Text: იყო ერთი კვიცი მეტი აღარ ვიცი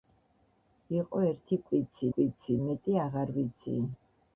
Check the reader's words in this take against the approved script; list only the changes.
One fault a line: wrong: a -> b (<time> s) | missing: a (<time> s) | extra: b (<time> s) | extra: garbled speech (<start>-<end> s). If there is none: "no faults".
extra: კვიცი (2.1 s)